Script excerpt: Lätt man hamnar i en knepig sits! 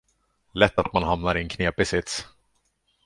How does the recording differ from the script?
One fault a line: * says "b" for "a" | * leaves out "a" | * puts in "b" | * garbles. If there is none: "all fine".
* puts in "att"